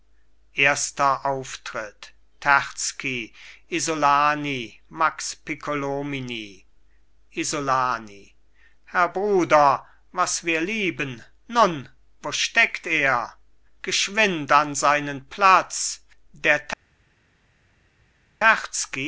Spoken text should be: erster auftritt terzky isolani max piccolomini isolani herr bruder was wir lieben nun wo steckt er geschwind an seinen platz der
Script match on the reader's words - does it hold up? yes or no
yes